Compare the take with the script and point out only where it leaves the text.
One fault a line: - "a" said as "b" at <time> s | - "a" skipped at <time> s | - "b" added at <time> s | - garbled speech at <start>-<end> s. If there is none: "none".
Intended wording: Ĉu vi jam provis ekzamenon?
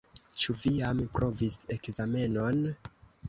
none